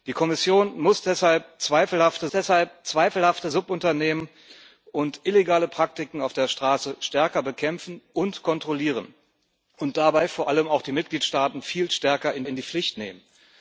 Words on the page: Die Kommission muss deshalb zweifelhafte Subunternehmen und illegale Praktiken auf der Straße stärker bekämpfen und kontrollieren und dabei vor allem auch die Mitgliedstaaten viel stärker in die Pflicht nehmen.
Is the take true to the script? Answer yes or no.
no